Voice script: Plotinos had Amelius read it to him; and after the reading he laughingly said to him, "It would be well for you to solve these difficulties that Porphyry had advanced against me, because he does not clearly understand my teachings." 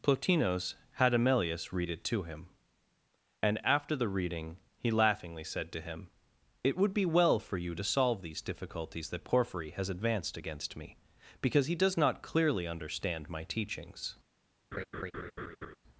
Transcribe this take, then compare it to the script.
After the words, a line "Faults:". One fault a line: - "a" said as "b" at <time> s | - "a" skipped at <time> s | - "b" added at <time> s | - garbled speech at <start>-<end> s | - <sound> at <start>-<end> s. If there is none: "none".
Plotinos had Amelius read it to him; and after the reading he laughingly said to him, "It would be well for you to solve these difficulties that Porphyry has advanced against me, because he does not clearly understand my teachings."
Faults:
- "had" said as "has" at 9.7 s
- laugh at 14.7-15.8 s